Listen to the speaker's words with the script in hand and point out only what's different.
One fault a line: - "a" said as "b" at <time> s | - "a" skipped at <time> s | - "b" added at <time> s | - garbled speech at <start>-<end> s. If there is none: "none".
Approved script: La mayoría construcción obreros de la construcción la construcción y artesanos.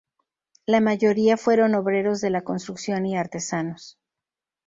- "construcción" said as "fueron" at 1.4 s
- "la construcción" skipped at 3.0 s